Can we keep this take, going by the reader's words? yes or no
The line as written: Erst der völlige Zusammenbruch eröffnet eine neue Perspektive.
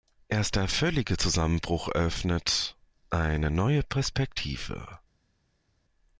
yes